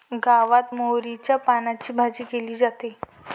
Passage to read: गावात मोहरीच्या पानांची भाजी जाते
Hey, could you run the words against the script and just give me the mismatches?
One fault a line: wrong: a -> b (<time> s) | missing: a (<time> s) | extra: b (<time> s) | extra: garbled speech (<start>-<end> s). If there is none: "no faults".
extra: केली (2.2 s)